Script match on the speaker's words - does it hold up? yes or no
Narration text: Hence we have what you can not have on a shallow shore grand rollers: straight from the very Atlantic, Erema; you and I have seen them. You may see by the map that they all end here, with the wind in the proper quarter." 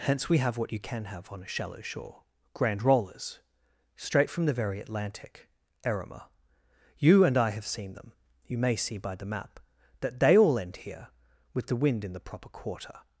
no